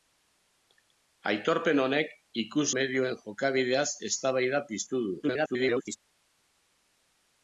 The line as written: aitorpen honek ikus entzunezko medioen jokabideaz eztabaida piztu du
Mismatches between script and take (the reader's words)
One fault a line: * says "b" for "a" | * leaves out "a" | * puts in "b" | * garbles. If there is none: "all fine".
* leaves out "entzunezko"
* garbles